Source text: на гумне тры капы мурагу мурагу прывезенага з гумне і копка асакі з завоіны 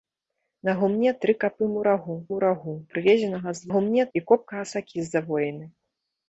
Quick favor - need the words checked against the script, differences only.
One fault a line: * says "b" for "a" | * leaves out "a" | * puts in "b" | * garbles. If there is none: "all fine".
all fine